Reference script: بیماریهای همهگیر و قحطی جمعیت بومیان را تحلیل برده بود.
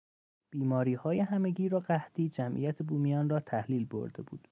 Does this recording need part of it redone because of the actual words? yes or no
no